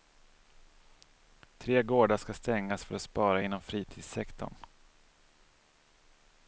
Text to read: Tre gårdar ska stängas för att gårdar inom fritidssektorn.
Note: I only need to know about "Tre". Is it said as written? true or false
true